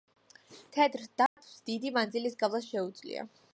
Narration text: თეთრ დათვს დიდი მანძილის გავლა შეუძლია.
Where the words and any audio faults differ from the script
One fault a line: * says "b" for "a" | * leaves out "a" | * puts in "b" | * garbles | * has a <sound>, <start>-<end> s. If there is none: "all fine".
* has a dropout, 1.3-1.4 s